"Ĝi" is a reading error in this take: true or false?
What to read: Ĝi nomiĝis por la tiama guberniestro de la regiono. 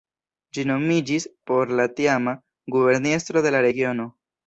false